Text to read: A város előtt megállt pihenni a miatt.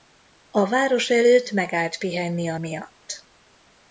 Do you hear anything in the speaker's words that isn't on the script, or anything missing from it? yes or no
no